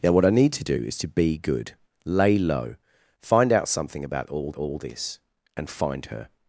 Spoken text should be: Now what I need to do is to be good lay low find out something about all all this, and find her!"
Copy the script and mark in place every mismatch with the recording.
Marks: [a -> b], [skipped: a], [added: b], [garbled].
Now what I need to do is to be good lay low find out something about all all this, and find her!"